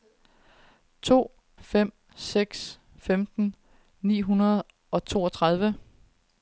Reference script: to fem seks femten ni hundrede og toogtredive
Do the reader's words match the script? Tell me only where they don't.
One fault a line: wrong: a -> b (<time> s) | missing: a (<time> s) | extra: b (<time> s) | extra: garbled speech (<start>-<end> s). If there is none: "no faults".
no faults